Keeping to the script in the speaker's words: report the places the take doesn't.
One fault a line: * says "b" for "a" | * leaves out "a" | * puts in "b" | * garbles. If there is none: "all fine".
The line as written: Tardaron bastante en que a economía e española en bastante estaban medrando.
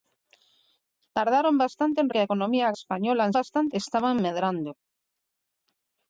all fine